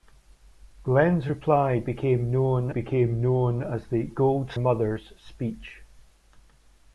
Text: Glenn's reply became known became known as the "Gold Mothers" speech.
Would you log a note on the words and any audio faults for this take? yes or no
no